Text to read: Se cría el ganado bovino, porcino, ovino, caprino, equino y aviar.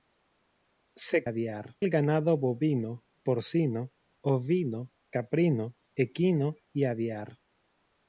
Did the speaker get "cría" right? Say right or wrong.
wrong